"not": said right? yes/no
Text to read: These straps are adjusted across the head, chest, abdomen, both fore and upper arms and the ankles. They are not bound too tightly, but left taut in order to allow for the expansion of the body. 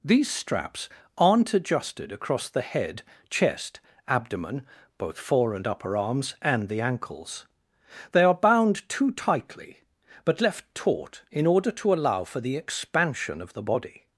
no